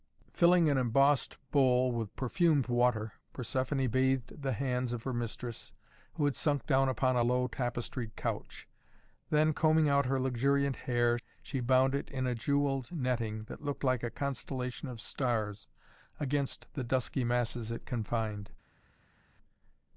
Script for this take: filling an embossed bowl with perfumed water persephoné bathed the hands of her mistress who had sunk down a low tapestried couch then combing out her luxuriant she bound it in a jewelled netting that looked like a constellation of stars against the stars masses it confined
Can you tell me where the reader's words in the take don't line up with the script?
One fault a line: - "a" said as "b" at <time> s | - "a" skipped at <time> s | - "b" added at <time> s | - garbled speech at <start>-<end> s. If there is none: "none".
- "upon" added at 6.9 s
- "hair" added at 10.8 s
- "stars" said as "dusky" at 16.8 s